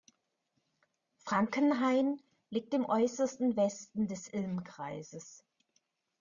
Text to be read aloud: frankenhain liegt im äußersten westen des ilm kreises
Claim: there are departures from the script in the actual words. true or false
false